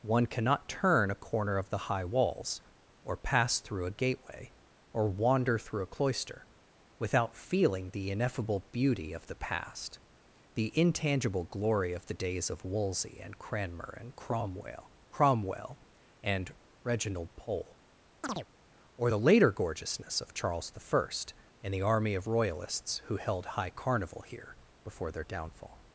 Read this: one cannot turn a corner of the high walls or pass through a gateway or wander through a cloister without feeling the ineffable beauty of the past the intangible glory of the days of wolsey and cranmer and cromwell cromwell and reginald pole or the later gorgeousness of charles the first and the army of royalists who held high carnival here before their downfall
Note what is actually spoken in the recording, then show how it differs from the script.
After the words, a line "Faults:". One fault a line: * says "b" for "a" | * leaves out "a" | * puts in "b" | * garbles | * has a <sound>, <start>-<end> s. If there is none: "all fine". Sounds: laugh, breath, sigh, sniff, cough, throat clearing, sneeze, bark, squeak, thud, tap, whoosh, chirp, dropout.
one cannot turn a corner of the high walls or pass through a gateway or wander through a cloister without feeling the ineffable beauty of the past the intangible glory of the days of wolsey and cranmer and cromwell cromwell and reginald pole or the later gorgeousness of charles the first and the army of royalists who held high carnival here before their downfall
Faults:
* has a chirp, 18.2-18.5 s